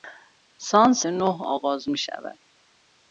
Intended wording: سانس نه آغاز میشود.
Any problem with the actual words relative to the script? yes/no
no